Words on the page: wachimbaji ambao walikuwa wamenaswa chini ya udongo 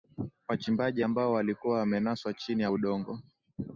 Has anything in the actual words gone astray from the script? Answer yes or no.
no